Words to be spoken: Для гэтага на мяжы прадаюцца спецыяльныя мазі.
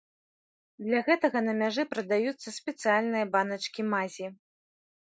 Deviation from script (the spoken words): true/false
true